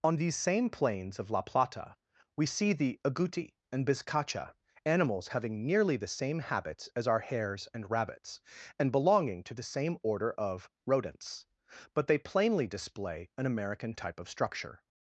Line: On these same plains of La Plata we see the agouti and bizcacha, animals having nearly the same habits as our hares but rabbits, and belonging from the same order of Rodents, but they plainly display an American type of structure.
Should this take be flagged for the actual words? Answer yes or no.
yes